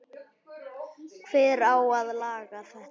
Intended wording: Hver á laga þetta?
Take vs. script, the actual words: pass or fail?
fail